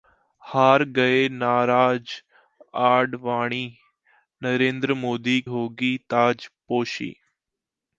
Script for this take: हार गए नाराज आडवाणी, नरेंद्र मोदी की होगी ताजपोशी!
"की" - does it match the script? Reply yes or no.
no